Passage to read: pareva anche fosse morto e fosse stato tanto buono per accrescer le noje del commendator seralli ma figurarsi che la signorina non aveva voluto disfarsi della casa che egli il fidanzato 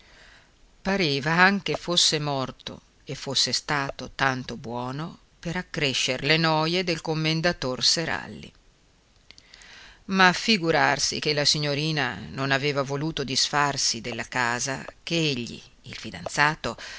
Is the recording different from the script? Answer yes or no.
no